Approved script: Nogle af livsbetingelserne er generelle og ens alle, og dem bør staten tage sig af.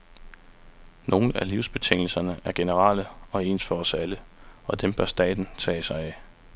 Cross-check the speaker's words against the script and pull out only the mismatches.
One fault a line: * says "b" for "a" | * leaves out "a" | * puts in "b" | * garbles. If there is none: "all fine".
* puts in "for os"